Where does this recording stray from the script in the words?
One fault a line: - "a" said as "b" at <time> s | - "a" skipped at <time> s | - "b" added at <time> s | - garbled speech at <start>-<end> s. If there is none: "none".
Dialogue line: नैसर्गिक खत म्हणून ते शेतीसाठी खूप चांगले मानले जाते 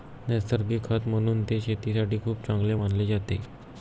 none